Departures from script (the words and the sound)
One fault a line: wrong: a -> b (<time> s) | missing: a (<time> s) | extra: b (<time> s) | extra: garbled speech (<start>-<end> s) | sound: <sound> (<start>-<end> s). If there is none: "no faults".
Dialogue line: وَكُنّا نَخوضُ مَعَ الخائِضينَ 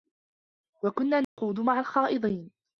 sound: dropout (1.2-1.4 s)